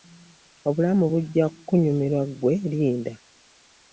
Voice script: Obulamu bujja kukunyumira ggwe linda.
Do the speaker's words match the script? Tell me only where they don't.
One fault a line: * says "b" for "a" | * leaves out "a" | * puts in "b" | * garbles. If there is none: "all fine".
all fine